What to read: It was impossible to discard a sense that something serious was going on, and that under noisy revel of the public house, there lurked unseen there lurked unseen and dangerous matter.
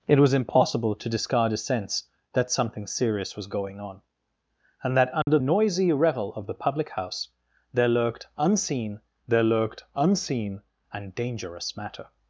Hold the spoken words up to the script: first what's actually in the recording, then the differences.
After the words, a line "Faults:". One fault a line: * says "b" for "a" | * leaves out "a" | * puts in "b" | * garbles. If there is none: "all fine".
It was impossible to discard a sense that something serious was going on, and that under noisy revel of the public house, there lurked unseen there lurked unseen and dangerous matter.
Faults:
all fine